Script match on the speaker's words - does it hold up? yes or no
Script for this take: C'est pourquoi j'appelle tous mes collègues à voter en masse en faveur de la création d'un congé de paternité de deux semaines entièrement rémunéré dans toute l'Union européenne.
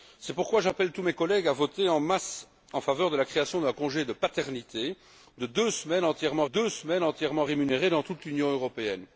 no